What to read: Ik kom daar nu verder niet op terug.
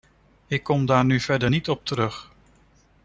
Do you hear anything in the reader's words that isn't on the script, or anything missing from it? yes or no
no